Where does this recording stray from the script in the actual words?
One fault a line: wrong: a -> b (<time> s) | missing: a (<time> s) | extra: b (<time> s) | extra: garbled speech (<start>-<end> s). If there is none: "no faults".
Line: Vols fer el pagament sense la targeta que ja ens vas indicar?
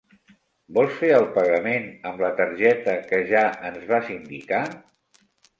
wrong: sense -> amb (2.1 s)